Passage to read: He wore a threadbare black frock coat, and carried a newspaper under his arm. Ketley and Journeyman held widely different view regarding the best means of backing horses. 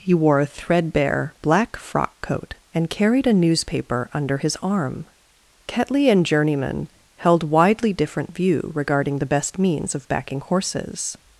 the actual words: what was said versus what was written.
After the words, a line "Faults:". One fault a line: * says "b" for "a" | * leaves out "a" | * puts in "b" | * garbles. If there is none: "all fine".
He wore a threadbare black frock coat, and carried a newspaper under his arm. Ketley and Journeyman held widely different view regarding the best means of backing horses.
Faults:
all fine